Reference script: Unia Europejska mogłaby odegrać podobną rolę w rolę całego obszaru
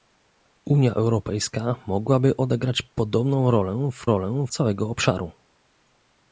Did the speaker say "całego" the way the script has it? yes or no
yes